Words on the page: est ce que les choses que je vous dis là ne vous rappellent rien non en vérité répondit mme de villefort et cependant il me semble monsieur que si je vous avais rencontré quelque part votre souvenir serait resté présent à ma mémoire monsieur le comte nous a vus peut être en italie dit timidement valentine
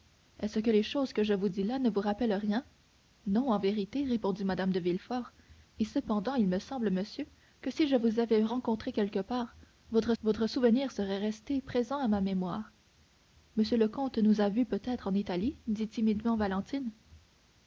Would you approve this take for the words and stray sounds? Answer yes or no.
no